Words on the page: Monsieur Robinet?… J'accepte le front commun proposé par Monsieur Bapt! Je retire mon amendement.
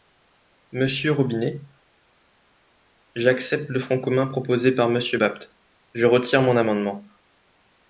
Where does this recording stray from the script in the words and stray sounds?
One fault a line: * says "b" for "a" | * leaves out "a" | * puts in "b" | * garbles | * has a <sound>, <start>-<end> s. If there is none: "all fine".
all fine